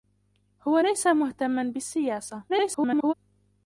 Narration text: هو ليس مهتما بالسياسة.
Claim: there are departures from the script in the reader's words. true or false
true